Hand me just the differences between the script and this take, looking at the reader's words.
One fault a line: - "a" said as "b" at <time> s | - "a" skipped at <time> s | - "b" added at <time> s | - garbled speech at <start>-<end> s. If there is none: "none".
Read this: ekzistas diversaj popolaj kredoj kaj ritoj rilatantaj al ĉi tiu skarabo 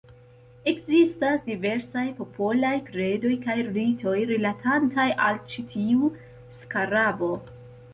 none